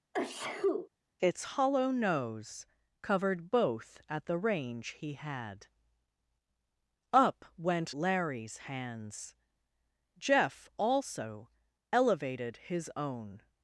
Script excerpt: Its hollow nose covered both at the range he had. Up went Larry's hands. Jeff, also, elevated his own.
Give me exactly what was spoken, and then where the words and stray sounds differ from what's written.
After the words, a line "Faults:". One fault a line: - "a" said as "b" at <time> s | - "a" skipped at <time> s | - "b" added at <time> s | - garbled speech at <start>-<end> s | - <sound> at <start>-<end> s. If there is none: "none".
Its hollow nose covered both at the range he had. Up went Larry's hands. Jeff, also, elevated his own.
Faults:
- sneeze at 0.1-0.9 s